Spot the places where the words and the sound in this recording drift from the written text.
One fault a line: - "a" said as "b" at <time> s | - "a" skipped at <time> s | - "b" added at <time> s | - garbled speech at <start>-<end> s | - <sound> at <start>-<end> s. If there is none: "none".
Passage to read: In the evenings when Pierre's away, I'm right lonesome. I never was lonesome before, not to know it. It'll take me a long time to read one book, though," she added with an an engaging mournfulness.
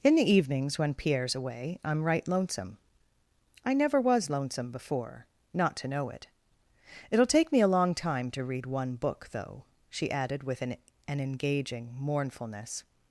none